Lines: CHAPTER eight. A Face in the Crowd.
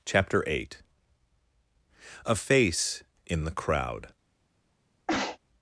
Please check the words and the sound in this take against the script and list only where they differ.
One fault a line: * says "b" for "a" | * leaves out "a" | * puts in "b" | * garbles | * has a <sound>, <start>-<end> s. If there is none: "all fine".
* has a sneeze, 5.1-5.4 s